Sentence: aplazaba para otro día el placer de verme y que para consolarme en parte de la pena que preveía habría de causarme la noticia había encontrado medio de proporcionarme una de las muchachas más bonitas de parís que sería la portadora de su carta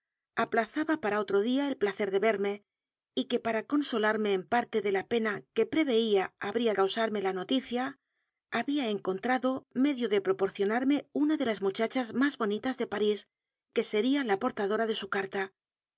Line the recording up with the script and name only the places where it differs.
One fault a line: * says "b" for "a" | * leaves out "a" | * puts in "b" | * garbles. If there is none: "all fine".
* leaves out "de"